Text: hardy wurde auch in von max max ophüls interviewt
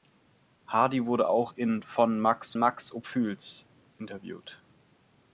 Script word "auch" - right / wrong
right